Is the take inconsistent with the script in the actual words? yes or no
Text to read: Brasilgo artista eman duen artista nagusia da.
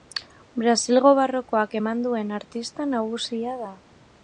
yes